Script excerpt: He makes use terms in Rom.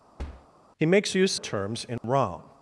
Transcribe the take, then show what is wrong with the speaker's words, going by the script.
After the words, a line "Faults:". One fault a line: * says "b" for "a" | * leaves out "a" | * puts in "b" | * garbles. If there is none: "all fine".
He makes use terms in Rom.
Faults:
all fine